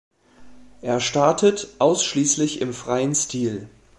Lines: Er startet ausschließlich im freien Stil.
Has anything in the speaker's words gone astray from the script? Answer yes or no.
no